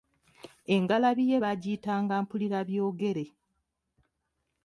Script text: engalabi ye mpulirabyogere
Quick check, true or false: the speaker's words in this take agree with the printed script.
false